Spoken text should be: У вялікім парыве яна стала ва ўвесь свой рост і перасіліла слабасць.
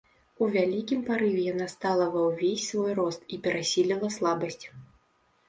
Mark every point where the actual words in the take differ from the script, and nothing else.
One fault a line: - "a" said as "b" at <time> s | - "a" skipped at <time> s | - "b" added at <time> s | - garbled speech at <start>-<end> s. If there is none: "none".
none